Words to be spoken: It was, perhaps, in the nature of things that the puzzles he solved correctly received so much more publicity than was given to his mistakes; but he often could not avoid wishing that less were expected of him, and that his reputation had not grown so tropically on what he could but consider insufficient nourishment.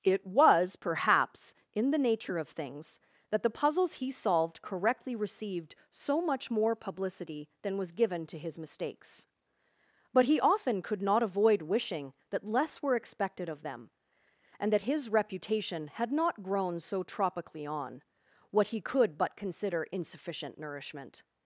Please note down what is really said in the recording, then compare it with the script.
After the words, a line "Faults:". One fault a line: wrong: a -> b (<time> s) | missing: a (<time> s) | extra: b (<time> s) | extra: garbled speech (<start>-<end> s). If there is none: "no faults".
It was, perhaps, in the nature of things that the puzzles he solved correctly received so much more publicity than was given to his mistakes; but he often could not avoid wishing that less were expected of them, and that his reputation had not grown so tropically on what he could but consider insufficient nourishment.
Faults:
wrong: him -> them (13.6 s)